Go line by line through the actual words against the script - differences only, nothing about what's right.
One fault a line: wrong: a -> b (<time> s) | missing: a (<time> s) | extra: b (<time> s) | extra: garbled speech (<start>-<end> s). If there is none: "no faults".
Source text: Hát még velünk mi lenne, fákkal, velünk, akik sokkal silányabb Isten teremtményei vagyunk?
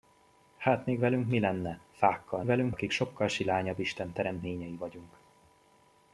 no faults